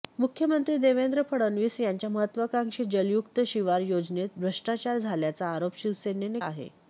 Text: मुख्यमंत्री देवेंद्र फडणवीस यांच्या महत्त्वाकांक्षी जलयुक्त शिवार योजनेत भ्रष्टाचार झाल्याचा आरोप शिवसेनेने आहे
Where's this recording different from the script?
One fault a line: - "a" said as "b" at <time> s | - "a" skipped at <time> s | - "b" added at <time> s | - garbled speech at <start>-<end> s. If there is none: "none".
none